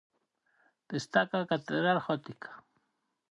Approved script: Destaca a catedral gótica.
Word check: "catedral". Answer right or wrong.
right